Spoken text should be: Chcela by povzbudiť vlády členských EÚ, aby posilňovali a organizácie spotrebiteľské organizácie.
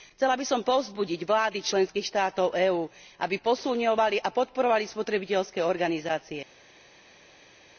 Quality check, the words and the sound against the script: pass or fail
fail